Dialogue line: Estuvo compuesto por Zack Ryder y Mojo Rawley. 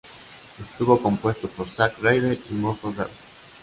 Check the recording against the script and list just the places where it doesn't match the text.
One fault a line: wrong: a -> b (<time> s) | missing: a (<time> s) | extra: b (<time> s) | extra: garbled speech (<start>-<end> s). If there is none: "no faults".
no faults